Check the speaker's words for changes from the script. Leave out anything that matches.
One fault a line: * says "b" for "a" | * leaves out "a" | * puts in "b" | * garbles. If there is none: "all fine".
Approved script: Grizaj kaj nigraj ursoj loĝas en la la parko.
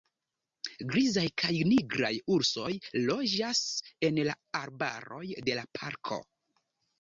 * puts in "arbaroj de"